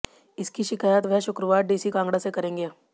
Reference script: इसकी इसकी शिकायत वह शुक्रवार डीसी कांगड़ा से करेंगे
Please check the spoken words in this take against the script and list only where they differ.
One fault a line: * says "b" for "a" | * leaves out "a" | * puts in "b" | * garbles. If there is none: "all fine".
* leaves out "इसकी"